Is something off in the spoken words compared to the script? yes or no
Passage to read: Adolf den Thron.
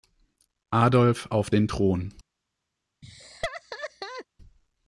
yes